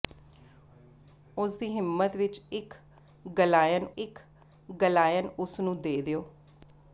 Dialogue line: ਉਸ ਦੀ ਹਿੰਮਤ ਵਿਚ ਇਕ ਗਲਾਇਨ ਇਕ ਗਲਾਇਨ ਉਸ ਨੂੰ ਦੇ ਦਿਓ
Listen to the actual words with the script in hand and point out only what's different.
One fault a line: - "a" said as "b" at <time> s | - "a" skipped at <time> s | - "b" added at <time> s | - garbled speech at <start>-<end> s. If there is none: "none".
none